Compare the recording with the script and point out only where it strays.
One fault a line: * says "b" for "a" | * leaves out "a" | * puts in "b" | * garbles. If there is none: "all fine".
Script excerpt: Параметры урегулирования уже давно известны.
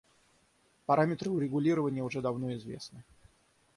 all fine